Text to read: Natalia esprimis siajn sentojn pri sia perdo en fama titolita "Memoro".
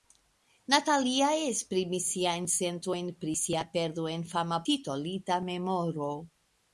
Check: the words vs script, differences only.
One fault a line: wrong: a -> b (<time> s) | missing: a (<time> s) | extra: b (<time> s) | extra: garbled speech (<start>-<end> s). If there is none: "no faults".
no faults